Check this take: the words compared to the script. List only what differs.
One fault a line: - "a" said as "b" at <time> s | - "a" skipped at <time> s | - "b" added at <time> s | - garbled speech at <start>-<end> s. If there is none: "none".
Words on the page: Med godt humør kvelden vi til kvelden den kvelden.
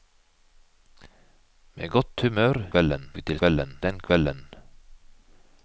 none